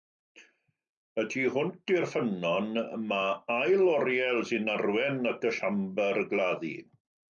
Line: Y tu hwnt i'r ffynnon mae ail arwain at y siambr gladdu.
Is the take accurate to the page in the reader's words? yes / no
no